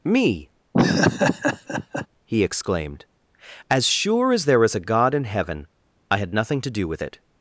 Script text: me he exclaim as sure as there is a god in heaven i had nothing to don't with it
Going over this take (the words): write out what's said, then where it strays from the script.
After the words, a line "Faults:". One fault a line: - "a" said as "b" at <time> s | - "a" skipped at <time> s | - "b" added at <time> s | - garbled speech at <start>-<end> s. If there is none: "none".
me he exclaimed as sure as there is a god in heaven i had nothing to do with it
Faults:
- "exclaim" said as "exclaimed" at 2.4 s
- "don't" said as "do" at 6.7 s